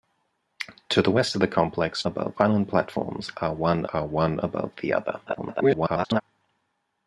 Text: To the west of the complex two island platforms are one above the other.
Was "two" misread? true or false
true